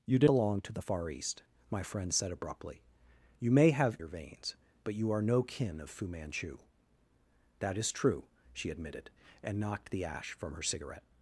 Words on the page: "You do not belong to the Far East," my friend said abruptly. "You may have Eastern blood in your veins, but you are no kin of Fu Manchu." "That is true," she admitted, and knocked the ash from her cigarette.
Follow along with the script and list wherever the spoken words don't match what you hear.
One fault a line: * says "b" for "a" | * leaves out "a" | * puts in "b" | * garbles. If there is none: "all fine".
* leaves out "not"
* leaves out "Eastern blood in"